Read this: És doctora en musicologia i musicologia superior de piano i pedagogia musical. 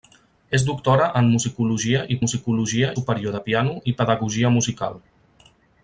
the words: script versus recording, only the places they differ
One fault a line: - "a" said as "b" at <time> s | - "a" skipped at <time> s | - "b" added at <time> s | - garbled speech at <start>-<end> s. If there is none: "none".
none